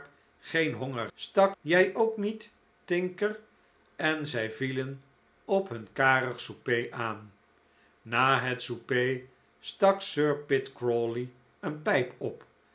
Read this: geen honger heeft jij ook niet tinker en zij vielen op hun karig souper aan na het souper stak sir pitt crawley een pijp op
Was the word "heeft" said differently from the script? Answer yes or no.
yes